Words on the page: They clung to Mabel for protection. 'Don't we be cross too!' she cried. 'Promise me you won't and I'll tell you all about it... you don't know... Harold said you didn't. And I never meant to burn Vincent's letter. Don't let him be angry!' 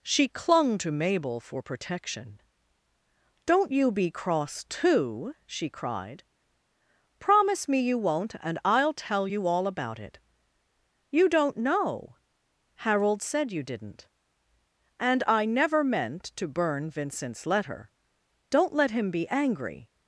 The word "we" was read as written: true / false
false